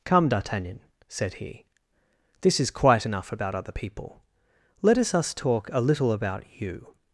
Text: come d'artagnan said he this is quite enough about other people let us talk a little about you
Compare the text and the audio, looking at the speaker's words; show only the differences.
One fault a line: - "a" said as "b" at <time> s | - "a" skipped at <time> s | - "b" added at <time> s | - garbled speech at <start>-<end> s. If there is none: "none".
- "us" added at 5.1 s